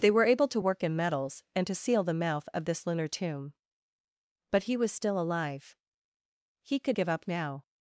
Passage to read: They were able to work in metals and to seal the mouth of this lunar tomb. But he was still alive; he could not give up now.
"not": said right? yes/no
no